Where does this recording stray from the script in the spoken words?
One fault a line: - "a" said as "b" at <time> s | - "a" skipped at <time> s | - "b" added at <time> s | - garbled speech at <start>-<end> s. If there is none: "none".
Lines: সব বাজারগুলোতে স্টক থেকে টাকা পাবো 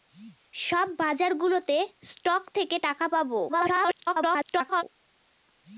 - garbled speech at 3.5-4.8 s